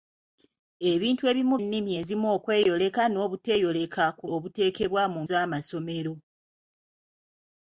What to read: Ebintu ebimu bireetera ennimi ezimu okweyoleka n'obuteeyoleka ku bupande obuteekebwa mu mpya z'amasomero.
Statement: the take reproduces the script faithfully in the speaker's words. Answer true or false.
false